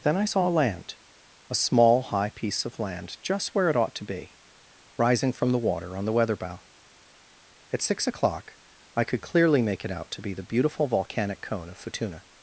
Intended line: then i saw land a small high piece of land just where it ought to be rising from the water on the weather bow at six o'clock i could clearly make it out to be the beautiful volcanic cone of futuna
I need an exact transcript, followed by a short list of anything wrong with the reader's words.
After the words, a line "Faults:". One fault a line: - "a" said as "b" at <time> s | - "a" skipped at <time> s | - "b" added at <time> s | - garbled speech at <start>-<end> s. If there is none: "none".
then i saw land a small high piece of land just where it ought to be rising from the water on the weather bow at six o'clock i could clearly make it out to be the beautiful volcanic cone of futuna
Faults:
none